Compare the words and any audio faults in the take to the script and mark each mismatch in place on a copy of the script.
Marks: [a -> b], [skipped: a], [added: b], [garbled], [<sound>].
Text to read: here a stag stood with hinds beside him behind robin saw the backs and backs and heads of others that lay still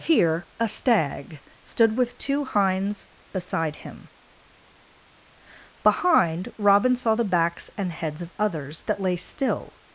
here a stag stood with [added: two] hinds beside him behind robin saw the backs and [skipped: backs and] heads of others that lay still